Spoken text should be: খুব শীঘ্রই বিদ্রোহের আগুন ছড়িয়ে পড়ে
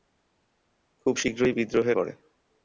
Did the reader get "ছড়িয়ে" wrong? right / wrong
wrong